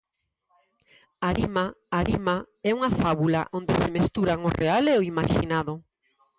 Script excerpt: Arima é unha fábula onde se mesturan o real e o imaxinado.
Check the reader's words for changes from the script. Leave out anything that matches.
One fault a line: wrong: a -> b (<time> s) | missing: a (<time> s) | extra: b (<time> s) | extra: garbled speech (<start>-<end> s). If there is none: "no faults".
extra: arima (2.0 s)